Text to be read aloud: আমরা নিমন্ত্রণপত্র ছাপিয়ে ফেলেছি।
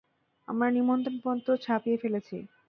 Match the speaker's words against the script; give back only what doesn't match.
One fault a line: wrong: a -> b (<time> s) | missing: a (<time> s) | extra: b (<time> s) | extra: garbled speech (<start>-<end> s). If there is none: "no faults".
no faults